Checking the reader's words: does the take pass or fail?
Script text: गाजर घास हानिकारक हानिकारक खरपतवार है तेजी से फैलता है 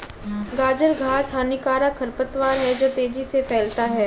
fail